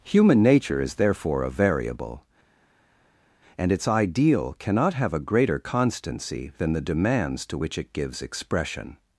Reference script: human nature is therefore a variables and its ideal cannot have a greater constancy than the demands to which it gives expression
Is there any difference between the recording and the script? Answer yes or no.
yes